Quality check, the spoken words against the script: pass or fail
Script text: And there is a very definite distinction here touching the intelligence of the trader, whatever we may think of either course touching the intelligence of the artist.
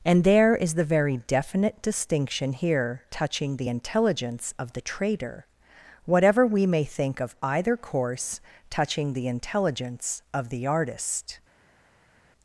fail